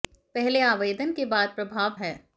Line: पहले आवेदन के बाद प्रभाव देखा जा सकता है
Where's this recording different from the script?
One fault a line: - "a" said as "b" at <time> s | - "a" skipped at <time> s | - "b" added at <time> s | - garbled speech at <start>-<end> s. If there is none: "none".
- "देखा जा सकता" skipped at 2.0 s